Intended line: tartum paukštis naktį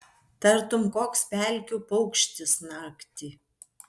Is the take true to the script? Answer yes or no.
no